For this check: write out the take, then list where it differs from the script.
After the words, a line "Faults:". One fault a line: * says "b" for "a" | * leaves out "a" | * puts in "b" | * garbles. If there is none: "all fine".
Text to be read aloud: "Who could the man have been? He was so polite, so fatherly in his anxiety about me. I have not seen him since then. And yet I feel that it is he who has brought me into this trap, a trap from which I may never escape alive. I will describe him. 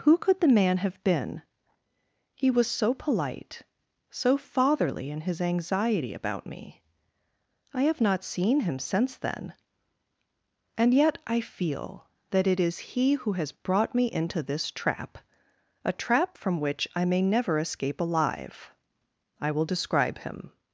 "Who could the man have been? He was so polite, so fatherly in his anxiety about me. I have not seen him since then. And yet I feel that it is he who has brought me into this trap, a trap from which I may never escape alive. I will describe him.
Faults:
all fine